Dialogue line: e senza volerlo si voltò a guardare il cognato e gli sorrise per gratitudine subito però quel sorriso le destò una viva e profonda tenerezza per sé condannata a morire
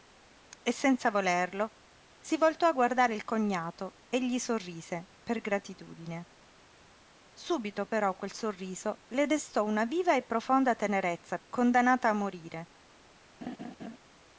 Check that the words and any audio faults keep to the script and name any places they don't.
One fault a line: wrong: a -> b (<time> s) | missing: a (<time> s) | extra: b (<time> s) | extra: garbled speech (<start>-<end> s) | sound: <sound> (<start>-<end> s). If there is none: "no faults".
missing: per sé (11.4 s)
sound: laugh (13.4-14.0 s)